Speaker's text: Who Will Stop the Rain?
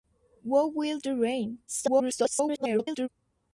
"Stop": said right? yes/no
no